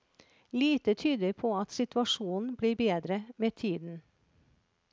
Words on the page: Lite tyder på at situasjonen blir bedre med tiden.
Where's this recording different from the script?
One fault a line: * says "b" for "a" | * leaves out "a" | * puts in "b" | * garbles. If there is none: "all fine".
all fine